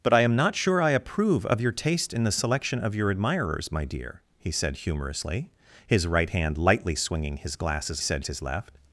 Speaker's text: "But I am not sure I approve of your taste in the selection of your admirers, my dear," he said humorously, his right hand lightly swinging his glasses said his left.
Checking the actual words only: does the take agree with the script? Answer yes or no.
yes